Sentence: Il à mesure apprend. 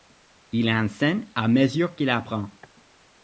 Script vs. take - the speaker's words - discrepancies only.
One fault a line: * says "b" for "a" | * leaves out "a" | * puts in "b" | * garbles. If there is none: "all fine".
* puts in "enseigne"
* puts in "qu'il"